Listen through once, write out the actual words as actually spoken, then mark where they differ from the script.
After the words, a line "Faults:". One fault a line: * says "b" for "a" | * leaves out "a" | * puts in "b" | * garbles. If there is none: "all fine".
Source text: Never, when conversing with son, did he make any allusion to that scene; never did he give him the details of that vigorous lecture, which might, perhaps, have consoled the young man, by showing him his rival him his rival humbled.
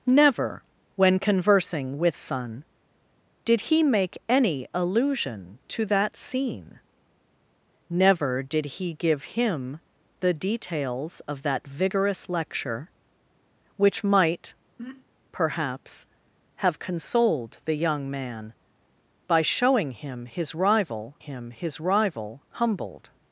Never, when conversing with son, did he make any allusion to that scene; never did he give him the details of that vigorous lecture, which might, perhaps, have consoled the young man, by showing him his rival him his rival humbled.
Faults:
all fine